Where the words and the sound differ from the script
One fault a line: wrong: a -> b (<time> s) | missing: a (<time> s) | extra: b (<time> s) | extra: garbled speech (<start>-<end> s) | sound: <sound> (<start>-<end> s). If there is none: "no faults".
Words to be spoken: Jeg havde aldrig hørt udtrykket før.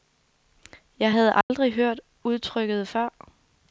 sound: dropout (1.4-1.5 s)